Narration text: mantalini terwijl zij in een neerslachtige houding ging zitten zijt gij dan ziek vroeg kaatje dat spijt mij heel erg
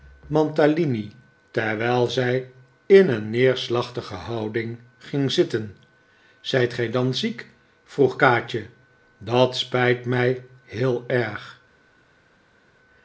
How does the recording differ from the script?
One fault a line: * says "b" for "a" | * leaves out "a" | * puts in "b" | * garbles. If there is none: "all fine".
all fine